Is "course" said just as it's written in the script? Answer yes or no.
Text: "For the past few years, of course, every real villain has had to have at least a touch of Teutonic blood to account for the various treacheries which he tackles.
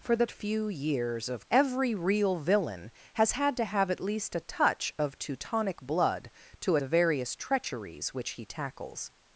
no